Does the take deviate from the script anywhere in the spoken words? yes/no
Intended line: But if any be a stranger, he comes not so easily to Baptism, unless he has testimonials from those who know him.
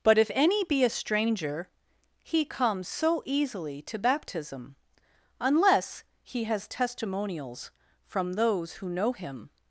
yes